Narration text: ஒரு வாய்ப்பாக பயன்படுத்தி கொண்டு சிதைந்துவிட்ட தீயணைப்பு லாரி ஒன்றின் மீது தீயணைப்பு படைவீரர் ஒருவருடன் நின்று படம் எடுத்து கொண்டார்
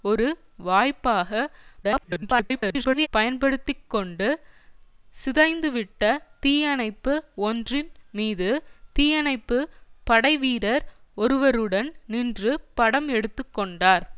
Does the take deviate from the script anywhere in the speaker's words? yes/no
yes